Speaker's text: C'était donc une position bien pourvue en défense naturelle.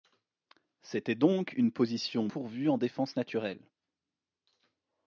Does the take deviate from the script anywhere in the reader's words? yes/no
yes